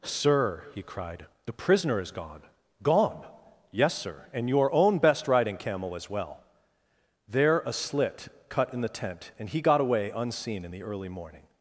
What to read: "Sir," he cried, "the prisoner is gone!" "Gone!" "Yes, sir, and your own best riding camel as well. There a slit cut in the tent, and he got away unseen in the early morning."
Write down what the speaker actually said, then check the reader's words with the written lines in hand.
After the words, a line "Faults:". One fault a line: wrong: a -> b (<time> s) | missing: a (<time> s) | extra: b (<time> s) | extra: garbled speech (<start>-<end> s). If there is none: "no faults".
"Sir," he cried, "the prisoner is gone!" "Gone!" "Yes, sir, and your own best riding camel as well. There a slit cut in the tent, and he got away unseen in the early morning."
Faults:
no faults